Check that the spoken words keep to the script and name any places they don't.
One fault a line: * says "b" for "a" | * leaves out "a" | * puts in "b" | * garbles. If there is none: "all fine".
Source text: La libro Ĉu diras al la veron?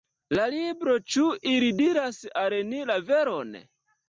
* puts in "ili"
* puts in "ni"